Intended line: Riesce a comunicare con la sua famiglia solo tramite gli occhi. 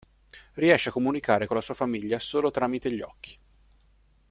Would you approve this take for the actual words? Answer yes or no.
yes